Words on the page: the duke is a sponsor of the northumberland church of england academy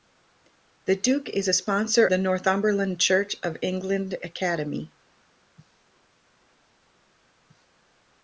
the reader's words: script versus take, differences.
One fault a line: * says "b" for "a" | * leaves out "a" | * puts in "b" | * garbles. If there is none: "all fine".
* leaves out "of"